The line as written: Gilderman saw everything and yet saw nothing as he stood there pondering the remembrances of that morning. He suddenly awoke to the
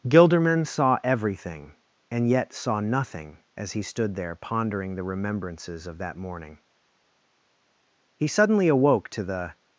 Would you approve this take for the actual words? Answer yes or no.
yes